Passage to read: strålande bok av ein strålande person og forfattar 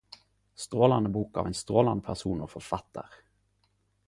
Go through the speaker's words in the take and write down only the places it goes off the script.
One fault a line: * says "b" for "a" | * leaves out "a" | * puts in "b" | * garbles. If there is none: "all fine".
all fine